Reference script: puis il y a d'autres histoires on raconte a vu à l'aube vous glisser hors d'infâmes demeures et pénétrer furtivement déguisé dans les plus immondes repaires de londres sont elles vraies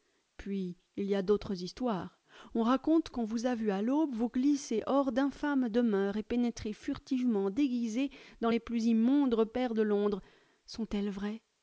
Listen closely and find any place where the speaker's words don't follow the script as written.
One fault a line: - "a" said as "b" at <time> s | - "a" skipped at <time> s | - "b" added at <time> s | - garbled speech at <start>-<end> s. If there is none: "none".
- "qu'on vous" added at 3.1 s